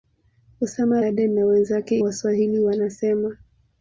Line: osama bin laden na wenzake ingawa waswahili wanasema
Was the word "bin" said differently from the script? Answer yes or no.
yes